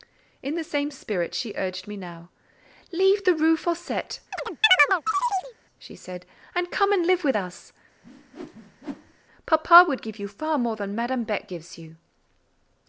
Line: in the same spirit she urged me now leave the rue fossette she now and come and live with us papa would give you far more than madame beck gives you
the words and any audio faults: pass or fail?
fail